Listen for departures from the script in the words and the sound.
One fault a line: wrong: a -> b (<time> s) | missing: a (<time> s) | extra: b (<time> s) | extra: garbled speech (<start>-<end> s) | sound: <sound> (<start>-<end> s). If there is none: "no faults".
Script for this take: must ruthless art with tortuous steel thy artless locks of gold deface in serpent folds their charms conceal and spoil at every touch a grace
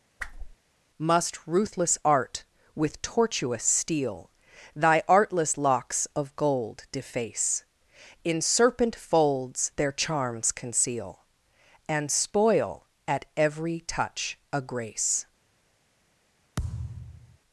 sound: whoosh (0.2-0.6 s)
sound: thud (16.6-17.4 s)